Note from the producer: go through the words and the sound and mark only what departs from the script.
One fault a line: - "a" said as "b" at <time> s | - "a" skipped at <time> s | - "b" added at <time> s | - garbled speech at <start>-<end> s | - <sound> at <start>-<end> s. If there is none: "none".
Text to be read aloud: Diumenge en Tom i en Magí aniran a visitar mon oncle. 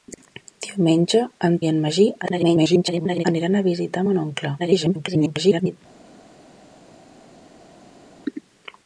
- "Tom" skipped at 1.6 s
- garbled speech at 2.2-3.3 s
- garbled speech at 4.6-5.8 s